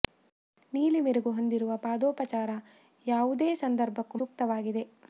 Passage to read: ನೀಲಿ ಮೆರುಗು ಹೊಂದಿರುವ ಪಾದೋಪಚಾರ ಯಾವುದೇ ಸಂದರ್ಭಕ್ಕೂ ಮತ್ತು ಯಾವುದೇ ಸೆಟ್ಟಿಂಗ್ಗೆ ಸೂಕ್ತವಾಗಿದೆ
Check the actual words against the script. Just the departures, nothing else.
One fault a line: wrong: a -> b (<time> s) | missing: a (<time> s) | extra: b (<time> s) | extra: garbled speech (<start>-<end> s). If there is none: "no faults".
missing: ಮತ್ತು ಯಾವುದೇ ಸೆಟ್ಟಿಂಗ್ಗೆ (4.2 s)